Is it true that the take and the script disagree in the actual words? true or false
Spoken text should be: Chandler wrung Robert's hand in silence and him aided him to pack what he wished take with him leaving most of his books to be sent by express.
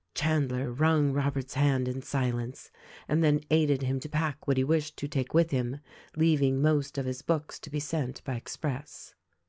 true